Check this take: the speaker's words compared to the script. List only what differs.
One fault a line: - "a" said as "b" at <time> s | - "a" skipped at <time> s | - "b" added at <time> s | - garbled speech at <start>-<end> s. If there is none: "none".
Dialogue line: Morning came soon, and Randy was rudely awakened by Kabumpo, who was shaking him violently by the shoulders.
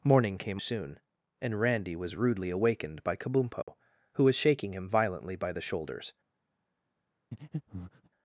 none